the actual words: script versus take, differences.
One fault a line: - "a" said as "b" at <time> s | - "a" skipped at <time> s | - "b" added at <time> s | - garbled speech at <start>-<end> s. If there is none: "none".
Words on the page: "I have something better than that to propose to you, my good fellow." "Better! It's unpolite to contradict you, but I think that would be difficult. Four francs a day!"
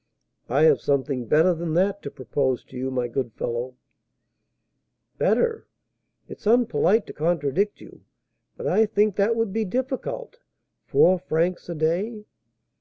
none